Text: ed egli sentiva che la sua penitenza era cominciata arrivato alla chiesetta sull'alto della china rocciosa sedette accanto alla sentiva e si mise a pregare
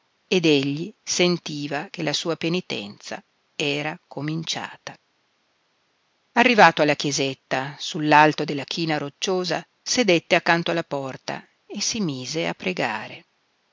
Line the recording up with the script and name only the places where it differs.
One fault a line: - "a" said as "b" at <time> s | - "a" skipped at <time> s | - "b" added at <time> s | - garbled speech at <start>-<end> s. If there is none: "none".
- "sentiva" said as "porta" at 10.8 s